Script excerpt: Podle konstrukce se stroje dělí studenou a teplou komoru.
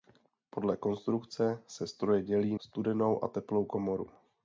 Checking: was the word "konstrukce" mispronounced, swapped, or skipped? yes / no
no